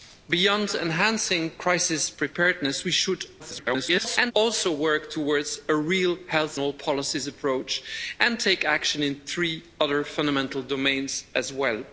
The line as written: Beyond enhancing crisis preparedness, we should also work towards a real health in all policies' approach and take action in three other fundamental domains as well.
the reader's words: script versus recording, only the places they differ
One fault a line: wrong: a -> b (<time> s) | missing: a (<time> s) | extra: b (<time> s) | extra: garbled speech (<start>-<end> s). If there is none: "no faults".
extra: garbled speech (3.4-4.3 s)
missing: in (6.6 s)